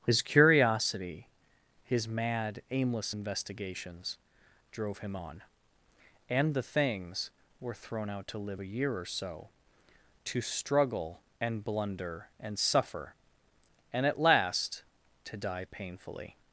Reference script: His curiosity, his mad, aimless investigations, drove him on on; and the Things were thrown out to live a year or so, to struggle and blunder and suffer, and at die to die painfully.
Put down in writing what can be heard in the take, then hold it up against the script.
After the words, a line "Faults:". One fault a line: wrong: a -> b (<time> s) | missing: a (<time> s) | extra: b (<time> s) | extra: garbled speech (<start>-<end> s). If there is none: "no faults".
His curiosity, his mad, aimless investigations, drove him on; and the Things were thrown out to live a year or so, to struggle and blunder and suffer, and at last to die painfully.
Faults:
missing: on (5.4 s)
wrong: die -> last (14.2 s)